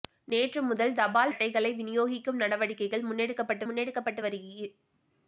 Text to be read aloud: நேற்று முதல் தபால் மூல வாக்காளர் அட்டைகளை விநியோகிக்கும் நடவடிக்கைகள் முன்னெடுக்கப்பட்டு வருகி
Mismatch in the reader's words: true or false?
true